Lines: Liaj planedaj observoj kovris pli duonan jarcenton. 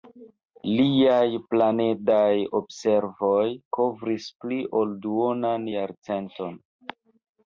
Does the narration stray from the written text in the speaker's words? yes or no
yes